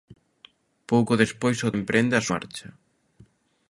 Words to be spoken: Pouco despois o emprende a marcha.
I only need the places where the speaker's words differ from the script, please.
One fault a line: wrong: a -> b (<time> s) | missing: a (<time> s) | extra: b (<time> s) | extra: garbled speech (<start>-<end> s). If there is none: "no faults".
no faults